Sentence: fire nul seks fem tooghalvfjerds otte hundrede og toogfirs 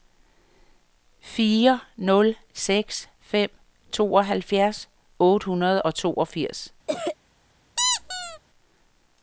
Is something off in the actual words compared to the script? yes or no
no